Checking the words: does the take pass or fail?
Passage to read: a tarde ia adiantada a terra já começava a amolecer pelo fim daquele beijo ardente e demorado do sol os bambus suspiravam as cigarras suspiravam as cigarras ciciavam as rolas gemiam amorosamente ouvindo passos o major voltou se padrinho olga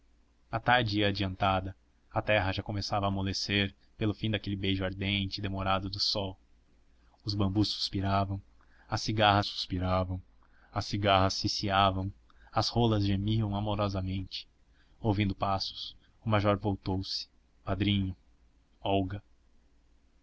pass